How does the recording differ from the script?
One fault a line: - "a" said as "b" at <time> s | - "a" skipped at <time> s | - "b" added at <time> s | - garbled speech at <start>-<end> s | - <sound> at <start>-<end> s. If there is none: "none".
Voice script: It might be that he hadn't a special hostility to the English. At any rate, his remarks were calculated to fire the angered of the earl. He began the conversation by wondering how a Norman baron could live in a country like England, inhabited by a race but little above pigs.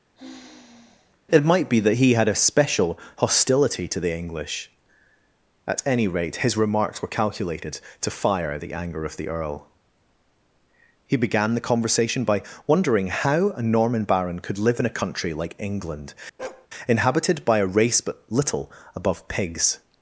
- sigh at 0.2-1.2 s
- "hadn't" said as "had" at 2.1 s
- "angered" said as "anger" at 8.7 s
- bark at 16.4-16.7 s